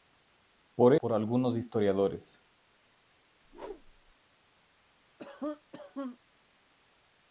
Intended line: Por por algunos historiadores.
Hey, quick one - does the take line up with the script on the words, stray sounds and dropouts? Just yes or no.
no